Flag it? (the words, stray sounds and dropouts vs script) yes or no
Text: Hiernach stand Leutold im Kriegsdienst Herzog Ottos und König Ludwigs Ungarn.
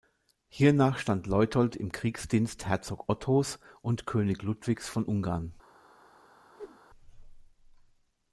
yes